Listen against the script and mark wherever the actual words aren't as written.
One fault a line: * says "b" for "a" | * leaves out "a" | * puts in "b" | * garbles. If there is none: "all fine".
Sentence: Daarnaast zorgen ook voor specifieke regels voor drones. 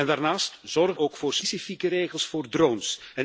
all fine